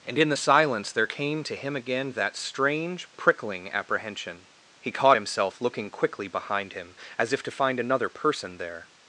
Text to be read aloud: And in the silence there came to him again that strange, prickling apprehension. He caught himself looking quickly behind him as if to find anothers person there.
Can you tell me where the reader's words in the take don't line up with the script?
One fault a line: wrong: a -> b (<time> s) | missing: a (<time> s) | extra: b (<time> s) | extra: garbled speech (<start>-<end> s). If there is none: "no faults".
wrong: anothers -> another (7.8 s)